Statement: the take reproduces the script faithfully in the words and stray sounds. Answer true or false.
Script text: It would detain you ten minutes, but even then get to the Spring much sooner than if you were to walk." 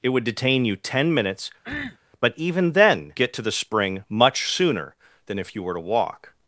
false